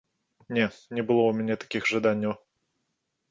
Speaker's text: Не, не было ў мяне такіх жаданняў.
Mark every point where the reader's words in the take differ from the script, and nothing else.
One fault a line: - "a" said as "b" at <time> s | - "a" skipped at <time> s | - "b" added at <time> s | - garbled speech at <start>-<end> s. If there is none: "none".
none